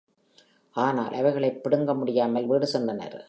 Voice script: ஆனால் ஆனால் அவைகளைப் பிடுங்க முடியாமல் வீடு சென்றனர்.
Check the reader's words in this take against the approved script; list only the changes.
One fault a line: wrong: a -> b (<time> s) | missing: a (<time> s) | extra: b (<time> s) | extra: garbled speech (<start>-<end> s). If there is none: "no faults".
missing: ஆனால் (1.1 s)